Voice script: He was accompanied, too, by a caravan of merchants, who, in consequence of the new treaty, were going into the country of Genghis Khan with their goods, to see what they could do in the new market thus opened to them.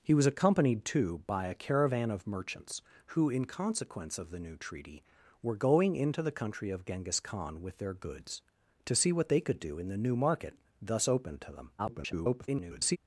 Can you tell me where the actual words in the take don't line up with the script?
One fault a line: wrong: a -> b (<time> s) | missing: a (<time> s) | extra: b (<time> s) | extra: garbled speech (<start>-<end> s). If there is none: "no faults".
extra: garbled speech (11.8-13.0 s)